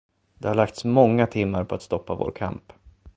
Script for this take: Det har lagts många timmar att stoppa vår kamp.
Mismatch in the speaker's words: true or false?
true